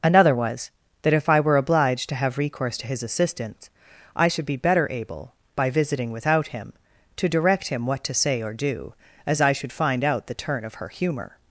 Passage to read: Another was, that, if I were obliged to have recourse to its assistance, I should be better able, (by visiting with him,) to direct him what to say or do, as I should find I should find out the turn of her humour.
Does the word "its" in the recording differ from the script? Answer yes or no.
yes